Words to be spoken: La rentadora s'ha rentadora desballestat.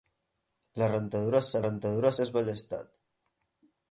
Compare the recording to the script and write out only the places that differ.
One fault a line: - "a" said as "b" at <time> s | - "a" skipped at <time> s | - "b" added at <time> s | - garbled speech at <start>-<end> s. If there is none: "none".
none